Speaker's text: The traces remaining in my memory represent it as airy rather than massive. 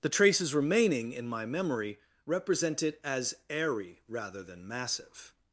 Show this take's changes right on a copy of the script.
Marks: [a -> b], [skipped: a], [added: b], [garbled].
The traces remaining in my memory represent it as airy rather than massive.